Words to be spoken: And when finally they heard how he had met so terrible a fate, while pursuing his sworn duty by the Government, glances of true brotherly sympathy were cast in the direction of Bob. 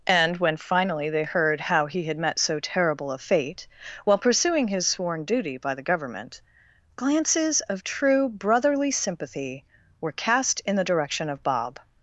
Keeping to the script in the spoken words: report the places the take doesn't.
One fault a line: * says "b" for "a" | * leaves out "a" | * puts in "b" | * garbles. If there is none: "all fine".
all fine